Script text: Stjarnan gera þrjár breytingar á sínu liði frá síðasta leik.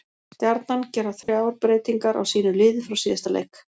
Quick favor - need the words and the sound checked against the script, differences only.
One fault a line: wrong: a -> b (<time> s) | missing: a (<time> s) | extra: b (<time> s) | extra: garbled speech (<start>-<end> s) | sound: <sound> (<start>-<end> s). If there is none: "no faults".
sound: dropout (1.2-1.3 s)